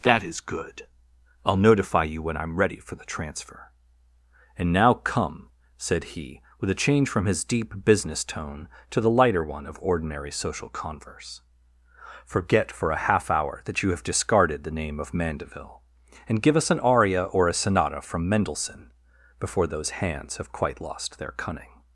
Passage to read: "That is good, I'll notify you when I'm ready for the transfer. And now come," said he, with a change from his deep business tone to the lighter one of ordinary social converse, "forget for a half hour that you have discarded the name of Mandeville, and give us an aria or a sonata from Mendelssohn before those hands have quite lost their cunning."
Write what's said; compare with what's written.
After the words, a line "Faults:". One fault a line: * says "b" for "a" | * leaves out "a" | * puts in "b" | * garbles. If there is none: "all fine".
"That is good, I'll notify you when I'm ready for the transfer. And now come," said he, with a change from his deep business tone to the lighter one of ordinary social converse, "forget for a half hour that you have discarded the name of Mandeville, and give us an aria or a sonata from Mendelssohn before those hands have quite lost their cunning."
Faults:
all fine